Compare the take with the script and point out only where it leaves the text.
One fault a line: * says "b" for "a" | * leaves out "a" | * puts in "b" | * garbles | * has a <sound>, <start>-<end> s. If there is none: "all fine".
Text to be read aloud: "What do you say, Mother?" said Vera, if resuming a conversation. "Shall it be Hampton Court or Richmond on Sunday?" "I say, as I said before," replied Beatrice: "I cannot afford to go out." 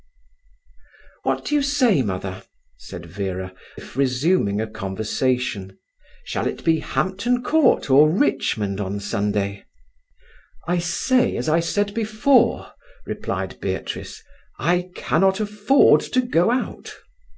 all fine